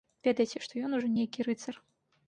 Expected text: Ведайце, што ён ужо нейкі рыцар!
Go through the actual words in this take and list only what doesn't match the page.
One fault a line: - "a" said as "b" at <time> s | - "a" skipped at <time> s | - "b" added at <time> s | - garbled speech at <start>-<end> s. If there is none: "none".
none